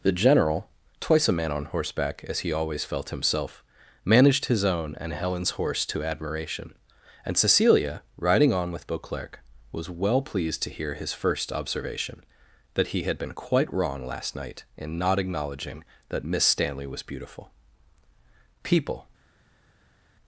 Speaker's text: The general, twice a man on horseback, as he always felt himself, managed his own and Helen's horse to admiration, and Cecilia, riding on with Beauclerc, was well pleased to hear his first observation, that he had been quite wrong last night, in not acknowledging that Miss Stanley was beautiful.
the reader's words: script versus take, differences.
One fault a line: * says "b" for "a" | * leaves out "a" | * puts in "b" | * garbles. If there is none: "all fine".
* puts in "People"